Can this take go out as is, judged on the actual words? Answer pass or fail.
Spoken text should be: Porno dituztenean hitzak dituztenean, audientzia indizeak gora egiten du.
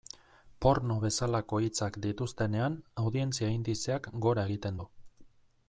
fail